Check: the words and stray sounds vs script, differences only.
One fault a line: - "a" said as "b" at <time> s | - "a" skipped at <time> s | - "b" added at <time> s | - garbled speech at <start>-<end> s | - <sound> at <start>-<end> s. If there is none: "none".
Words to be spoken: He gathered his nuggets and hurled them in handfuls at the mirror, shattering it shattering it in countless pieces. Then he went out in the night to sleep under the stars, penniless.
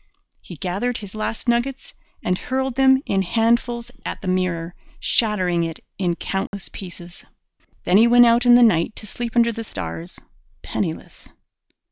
- "last" added at 1.1 s
- "shattering it" skipped at 5.8 s
- dropout at 6.5-6.5 s